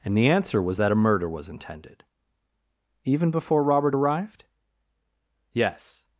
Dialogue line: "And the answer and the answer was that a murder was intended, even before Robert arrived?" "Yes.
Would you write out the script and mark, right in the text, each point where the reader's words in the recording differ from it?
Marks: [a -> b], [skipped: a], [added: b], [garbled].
"And the answer [skipped: and the answer] was that a murder was intended, even before Robert arrived?" "Yes.